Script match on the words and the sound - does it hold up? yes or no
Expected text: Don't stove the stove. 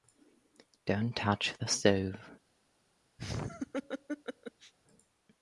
no